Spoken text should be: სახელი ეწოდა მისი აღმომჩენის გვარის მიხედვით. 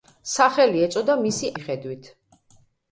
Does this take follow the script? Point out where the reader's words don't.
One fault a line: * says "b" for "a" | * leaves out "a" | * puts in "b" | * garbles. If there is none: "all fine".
* leaves out "აღმომჩენის გვარის"